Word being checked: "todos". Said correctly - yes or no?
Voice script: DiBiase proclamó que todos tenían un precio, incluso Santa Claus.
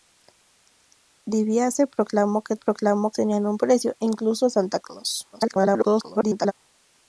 no